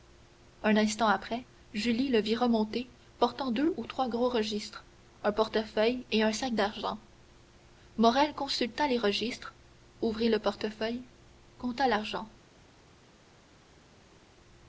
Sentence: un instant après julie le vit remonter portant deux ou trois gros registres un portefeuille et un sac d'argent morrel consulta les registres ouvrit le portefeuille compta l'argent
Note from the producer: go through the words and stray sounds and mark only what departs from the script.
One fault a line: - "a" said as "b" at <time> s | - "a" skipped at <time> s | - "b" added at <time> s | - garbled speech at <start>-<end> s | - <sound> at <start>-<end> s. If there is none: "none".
none